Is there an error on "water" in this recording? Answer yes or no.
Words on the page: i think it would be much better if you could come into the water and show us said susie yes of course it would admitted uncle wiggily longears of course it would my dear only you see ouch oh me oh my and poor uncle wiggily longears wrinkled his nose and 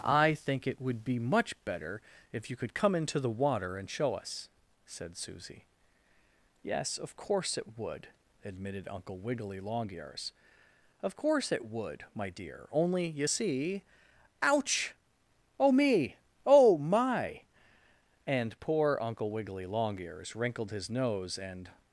no